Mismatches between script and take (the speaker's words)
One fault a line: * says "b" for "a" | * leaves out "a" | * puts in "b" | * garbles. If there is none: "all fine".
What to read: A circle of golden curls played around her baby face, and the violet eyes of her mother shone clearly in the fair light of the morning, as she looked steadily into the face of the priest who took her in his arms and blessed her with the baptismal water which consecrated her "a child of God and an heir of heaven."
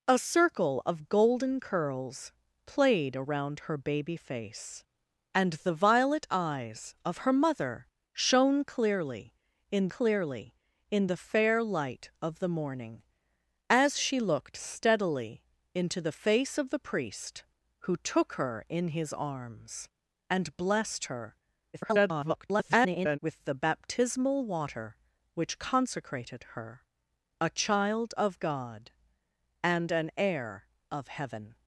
* puts in "clearly in"
* garbles